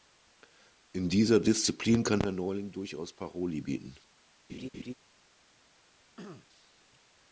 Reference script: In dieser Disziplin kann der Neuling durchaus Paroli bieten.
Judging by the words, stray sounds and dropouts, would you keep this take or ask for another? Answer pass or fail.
fail